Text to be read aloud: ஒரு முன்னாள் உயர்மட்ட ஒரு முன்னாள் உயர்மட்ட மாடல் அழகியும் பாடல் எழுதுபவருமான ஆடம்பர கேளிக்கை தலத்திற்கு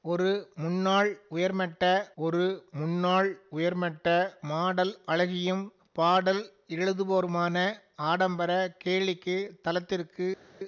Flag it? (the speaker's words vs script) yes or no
no